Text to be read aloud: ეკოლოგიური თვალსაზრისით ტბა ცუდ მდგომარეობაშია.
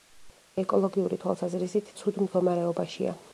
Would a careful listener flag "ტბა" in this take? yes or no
yes